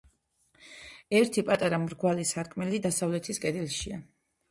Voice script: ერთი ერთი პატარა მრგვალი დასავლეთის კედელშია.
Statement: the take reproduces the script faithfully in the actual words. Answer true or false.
false